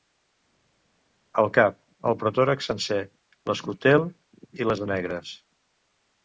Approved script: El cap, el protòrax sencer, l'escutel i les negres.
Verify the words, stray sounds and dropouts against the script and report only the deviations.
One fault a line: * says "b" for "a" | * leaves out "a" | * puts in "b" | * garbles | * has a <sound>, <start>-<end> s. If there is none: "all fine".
all fine